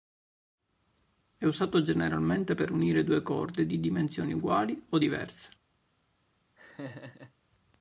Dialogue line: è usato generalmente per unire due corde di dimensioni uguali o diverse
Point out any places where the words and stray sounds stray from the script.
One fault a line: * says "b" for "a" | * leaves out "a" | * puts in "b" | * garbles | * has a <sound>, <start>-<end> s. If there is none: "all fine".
* has a laugh, 6.6-7.3 s